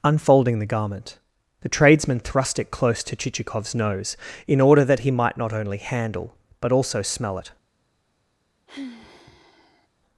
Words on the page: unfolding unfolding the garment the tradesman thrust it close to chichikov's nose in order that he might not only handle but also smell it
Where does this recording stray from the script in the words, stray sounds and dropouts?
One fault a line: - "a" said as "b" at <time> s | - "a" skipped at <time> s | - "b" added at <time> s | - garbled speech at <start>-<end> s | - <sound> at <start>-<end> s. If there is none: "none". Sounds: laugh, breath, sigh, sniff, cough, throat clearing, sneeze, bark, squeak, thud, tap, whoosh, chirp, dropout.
- "unfolding" skipped at 0.6 s
- sigh at 8.7-9.9 s